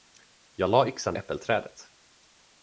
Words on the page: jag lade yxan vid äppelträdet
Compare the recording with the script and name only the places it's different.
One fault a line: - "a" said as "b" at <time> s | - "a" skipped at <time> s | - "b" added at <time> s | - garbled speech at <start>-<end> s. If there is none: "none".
- "vid" skipped at 1.1 s